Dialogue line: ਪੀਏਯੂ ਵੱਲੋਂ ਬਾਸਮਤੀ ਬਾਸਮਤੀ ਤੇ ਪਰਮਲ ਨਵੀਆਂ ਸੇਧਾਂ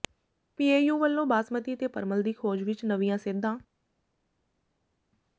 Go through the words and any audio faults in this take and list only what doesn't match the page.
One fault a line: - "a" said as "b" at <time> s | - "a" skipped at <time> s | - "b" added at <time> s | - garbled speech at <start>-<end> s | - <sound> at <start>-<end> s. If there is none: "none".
- "ਬਾਸਮਤੀ" skipped at 1.8 s
- "ਦੀ ਖੋਜ ਵਿੱਚ" added at 2.2 s